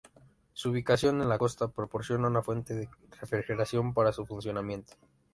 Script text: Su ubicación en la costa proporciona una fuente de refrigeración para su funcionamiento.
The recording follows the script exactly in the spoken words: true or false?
true